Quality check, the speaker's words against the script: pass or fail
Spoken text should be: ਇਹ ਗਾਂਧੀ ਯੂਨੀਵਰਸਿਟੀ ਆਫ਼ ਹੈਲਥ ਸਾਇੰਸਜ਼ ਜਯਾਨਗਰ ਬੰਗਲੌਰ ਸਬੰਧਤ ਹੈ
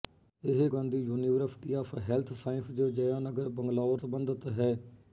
pass